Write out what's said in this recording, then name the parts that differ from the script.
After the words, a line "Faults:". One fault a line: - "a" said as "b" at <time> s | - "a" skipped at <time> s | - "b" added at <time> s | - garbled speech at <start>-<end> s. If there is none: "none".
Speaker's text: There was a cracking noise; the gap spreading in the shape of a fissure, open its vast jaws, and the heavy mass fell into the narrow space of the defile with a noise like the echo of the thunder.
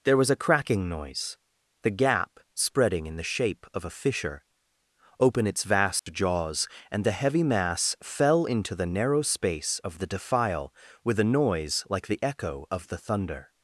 There was a cracking noise; the gap spreading in the shape of a fissure, open its vast jaws, and the heavy mass fell into the narrow space of the defile with a noise like the echo of the thunder.
Faults:
none